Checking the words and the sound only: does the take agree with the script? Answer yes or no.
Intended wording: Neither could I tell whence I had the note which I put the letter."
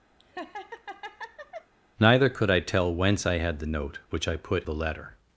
no